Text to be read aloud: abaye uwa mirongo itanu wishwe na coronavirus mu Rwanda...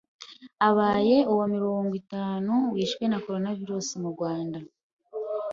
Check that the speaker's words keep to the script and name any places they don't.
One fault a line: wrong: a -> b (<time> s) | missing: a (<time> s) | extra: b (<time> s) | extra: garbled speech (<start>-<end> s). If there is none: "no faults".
no faults